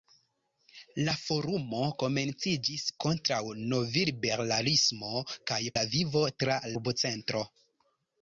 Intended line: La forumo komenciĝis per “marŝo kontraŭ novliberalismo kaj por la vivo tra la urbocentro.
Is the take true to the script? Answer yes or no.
no